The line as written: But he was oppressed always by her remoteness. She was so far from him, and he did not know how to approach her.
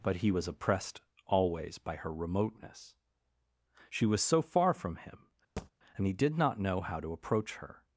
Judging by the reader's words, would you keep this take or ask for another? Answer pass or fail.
pass